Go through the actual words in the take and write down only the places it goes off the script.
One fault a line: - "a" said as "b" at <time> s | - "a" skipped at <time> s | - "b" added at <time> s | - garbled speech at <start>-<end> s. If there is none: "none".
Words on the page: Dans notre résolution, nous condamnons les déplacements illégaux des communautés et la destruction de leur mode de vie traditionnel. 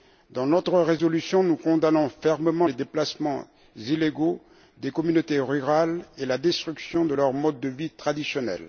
- "fermement" added at 2.1 s
- "rurales" added at 5.4 s